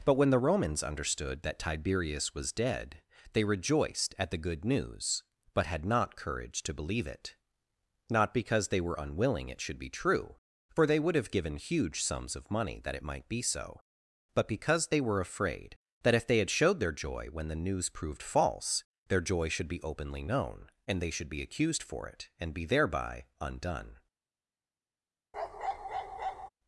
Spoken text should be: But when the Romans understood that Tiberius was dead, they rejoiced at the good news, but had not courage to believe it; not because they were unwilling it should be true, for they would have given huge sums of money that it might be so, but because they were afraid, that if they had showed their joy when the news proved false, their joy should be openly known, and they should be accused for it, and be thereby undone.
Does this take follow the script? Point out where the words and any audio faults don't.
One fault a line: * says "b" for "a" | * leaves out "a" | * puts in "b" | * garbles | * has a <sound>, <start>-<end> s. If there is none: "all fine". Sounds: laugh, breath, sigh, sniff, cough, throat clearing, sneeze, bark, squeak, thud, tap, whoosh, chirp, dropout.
* has a bark, 25.3-26.5 s